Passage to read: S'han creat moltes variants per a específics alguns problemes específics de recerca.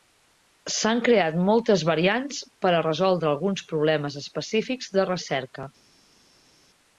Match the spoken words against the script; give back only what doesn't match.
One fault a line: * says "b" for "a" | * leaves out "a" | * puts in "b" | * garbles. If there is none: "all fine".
* says "resoldre" for "específics"